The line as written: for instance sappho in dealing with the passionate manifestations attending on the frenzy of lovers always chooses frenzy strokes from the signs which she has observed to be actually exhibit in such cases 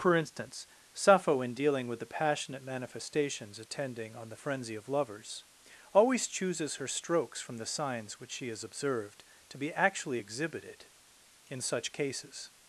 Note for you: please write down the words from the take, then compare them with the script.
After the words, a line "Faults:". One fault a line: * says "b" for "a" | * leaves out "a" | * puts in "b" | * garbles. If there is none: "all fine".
for instance sappho in dealing with the passionate manifestations attending on the frenzy of lovers always chooses her strokes from the signs which she has observed to be actually exhibited in such cases
Faults:
* says "her" for "frenzy"
* says "exhibited" for "exhibit"